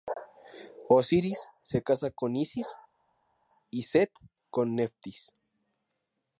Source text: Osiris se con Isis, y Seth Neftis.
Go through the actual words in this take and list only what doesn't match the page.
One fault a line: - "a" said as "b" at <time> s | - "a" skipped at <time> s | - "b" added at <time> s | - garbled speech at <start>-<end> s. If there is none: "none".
- "casa" added at 1.8 s
- "con" added at 4.5 s